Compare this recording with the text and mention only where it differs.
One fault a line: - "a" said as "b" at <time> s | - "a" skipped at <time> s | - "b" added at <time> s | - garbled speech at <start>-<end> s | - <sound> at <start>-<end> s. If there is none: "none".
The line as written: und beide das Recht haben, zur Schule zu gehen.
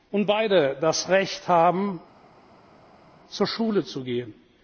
none